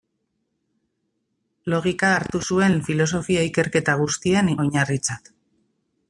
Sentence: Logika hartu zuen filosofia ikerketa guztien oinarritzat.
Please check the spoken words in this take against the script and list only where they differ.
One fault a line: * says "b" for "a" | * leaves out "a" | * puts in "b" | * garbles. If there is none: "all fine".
all fine